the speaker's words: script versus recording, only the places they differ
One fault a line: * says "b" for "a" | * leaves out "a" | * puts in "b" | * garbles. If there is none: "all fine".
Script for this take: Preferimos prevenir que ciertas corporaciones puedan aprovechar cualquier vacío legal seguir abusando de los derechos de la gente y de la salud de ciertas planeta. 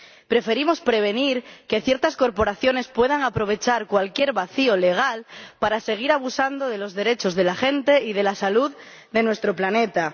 * puts in "para"
* says "nuestro" for "ciertas"